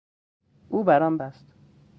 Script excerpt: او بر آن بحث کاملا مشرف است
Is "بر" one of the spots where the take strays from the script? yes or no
no